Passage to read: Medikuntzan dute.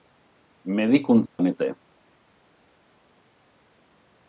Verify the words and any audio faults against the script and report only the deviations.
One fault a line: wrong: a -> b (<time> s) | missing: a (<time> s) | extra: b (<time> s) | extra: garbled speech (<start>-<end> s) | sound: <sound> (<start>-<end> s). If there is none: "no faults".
sound: dropout (1.3-1.4 s)